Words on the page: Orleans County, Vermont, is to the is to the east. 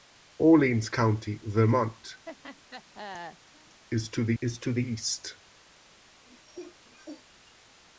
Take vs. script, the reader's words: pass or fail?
pass